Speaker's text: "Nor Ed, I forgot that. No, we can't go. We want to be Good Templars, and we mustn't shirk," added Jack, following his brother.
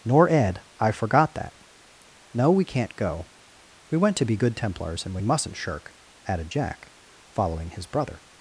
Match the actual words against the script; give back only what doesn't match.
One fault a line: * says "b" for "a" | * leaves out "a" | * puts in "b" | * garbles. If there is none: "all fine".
* says "went" for "want"